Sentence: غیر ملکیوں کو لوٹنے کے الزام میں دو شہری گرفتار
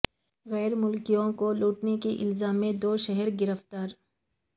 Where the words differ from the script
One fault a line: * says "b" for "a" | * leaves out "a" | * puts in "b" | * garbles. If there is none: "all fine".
all fine